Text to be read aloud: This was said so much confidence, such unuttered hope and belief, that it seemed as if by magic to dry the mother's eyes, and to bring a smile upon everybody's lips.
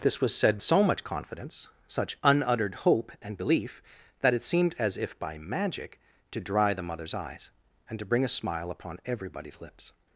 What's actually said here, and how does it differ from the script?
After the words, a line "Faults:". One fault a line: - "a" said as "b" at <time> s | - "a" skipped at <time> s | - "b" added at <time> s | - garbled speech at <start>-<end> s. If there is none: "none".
This was said so much confidence, such unuttered hope and belief, that it seemed as if by magic to dry the mother's eyes, and to bring a smile upon everybody's lips.
Faults:
none